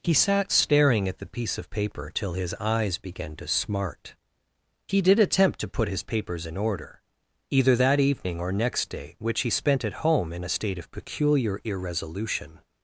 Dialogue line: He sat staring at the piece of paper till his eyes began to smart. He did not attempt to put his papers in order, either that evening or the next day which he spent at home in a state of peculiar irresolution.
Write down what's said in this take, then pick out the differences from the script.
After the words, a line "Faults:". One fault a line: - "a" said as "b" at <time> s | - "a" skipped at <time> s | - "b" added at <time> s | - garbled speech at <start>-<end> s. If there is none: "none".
He sat staring at the piece of paper till his eyes began to smart. He did attempt to put his papers in order, either that evening or next day which he spent at home in a state of peculiar irresolution.
Faults:
- "not" skipped at 5.2 s
- "the" skipped at 8.5 s